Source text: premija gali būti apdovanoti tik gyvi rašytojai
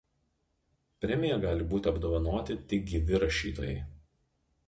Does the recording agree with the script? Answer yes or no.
yes